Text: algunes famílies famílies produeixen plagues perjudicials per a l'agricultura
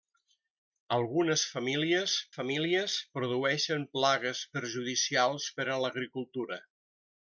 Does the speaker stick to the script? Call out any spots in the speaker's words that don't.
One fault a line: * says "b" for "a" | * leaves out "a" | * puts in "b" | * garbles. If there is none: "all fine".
all fine